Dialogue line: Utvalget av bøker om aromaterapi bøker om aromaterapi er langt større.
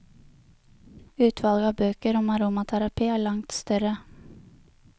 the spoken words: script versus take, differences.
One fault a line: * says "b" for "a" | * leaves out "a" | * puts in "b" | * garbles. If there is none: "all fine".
* leaves out "bøker om aromaterapi"